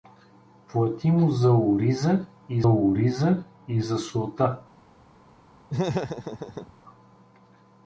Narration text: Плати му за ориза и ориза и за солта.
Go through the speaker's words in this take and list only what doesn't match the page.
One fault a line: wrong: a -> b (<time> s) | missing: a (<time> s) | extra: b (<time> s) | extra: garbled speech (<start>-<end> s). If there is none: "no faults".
no faults